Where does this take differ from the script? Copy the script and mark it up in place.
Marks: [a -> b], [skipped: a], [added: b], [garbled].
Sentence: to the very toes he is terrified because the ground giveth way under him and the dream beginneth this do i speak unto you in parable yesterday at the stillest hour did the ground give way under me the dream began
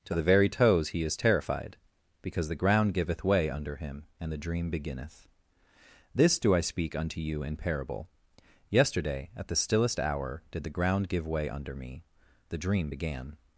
to the very toes he is terrified because the ground giveth way under him and the dream beginneth this do i speak unto you in parable yesterday at the stillest hour did the ground give way under me the dream began